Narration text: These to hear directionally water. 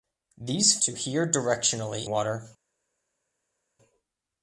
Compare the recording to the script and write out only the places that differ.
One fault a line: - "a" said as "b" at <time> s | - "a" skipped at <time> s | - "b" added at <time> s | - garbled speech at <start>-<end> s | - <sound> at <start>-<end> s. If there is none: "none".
none